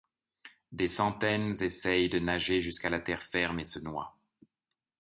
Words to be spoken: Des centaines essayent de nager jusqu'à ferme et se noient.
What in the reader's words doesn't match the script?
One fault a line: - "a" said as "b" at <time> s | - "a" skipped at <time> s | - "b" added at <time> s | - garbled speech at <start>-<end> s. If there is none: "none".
- "la terre" added at 2.9 s